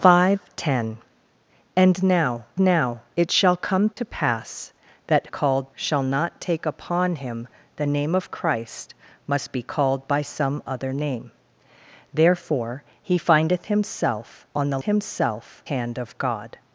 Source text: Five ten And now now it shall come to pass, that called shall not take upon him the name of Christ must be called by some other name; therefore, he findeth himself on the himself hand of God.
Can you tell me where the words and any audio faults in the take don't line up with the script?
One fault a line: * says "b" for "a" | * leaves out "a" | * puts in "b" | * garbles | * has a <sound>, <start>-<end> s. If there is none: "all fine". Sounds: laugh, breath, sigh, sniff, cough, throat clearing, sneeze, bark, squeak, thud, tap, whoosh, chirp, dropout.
* has a dropout, 3.9-4.0 s